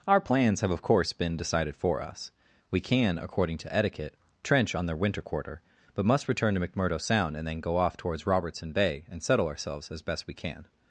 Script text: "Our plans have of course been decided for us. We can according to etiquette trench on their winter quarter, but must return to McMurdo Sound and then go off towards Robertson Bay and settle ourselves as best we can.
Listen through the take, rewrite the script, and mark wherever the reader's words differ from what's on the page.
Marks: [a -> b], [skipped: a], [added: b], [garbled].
"Our plans have of course been decided for us. We can according to etiquette trench on their winter quarter, but must return to McMurdo Sound and then go off towards Robertson Bay and settle ourselves as best we can.